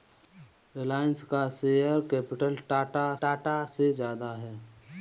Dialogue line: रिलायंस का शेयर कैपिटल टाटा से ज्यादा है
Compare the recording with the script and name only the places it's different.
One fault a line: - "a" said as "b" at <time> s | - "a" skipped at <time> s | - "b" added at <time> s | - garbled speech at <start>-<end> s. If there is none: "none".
- "टाटा" added at 3.2 s